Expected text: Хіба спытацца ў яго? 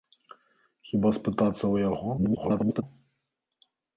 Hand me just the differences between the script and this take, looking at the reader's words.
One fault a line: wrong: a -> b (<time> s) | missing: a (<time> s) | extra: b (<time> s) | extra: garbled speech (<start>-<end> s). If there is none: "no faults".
extra: garbled speech (2.2-2.8 s)